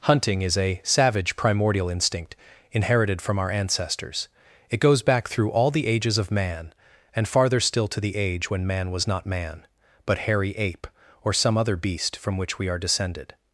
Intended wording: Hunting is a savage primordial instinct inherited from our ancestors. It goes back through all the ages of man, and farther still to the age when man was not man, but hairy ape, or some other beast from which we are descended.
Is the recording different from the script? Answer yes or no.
no